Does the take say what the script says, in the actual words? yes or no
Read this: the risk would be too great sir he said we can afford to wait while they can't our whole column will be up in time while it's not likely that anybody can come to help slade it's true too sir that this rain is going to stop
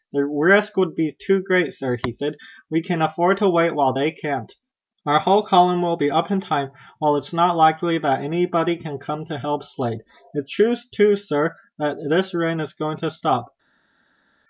yes